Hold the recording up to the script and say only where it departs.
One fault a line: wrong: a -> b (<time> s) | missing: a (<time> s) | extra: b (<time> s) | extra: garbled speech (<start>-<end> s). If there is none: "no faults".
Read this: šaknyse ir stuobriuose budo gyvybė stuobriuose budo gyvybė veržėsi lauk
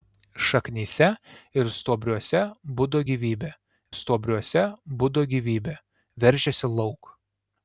no faults